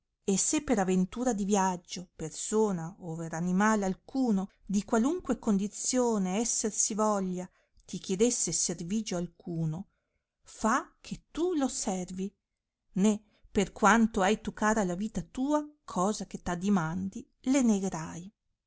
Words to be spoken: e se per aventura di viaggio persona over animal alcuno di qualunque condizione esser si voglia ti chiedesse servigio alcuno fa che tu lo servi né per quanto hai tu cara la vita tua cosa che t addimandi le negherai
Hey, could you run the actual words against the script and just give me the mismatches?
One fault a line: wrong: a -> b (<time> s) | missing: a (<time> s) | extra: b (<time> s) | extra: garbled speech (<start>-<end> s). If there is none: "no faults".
no faults